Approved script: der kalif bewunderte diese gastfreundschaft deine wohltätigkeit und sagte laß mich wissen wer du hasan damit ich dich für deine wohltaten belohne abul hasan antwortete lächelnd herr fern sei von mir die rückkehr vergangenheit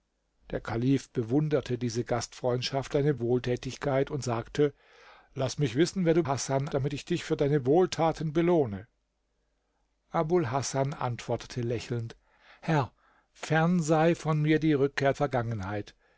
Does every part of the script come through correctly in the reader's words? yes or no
yes